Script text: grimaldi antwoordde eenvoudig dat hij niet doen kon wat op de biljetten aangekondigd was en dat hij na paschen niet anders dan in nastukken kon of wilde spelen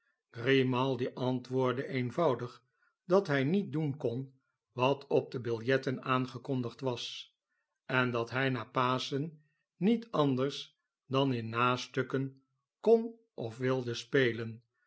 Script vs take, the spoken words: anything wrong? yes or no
no